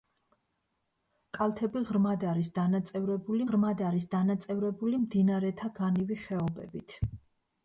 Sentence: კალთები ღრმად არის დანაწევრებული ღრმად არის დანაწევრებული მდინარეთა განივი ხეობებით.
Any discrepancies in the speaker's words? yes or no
no